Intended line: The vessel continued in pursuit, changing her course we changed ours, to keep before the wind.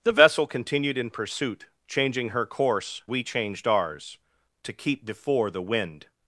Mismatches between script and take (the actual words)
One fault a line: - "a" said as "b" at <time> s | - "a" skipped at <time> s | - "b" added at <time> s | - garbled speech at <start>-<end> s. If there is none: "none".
none